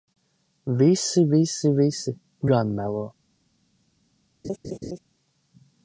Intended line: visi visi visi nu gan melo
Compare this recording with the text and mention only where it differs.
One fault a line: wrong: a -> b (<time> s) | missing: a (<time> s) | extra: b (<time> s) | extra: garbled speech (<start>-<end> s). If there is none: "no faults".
missing: nu (2.2 s)